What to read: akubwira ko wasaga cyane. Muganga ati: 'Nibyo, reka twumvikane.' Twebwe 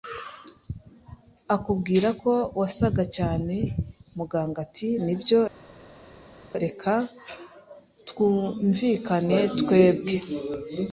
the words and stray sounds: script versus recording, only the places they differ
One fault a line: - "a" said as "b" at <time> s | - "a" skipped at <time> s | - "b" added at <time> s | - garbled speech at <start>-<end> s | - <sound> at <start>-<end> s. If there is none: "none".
none